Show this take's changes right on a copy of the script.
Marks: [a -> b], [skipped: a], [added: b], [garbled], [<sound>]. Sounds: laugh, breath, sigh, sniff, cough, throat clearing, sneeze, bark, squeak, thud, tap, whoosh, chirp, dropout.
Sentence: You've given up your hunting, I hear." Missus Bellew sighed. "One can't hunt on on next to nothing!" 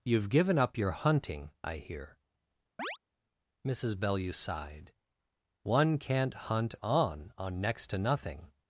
You've given up your hunting, I hear." [chirp] Missus Bellew sighed. "One can't hunt on on next to nothing!"